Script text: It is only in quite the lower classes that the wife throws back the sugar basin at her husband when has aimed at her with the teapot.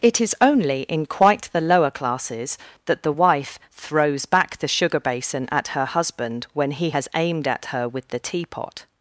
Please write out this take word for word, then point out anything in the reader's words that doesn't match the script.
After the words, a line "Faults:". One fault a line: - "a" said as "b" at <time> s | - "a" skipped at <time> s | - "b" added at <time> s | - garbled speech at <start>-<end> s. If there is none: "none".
It is only in quite the lower classes that the wife throws back the sugar basin at her husband when he has aimed at her with the teapot.
Faults:
- "he" added at 6.7 s